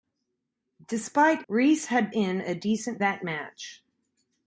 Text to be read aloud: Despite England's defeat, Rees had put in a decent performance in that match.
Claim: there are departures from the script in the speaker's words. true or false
true